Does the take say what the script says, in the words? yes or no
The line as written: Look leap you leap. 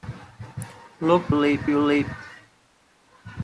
yes